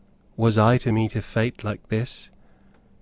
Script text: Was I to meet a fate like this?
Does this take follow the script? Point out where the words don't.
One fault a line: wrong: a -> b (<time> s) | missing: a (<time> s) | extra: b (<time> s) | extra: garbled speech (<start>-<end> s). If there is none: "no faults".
no faults